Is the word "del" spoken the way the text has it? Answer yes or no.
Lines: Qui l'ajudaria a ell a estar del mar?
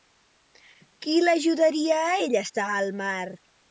no